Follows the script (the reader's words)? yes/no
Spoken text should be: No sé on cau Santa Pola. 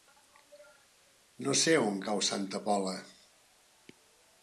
yes